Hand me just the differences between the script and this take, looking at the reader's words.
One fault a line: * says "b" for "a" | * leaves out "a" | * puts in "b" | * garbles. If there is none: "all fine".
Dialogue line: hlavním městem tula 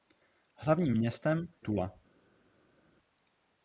all fine